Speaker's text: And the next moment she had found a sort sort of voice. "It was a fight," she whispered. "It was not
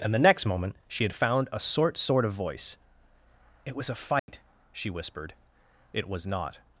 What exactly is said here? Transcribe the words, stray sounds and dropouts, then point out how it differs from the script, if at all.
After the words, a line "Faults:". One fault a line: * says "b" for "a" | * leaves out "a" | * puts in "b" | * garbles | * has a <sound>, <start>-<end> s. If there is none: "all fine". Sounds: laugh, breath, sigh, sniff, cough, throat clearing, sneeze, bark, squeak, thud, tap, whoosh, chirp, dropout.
And the next moment she had found a sort sort of voice. "It was a fight," she whispered. "It was not
Faults:
* has a dropout, 4.2-4.3 s